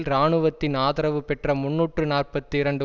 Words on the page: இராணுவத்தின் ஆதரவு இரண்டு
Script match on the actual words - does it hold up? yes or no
no